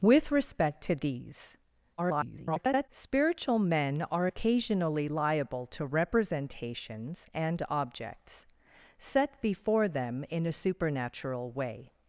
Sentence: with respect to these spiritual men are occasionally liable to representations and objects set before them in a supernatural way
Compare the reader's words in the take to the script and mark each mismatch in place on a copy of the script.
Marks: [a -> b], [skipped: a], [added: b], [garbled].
with respect to these [garbled] spiritual men are occasionally liable to representations and objects set before them in a supernatural way